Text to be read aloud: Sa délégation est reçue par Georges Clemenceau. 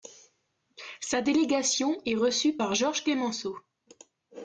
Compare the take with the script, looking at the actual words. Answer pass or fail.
pass